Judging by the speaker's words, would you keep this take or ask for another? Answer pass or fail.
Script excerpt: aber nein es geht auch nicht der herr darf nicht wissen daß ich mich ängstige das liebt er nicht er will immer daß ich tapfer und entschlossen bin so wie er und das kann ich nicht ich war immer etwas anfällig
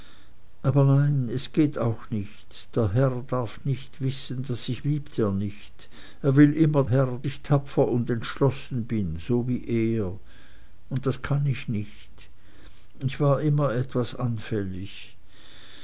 fail